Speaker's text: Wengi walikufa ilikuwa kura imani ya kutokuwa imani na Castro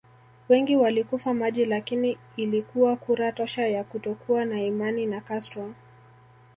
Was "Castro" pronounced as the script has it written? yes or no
yes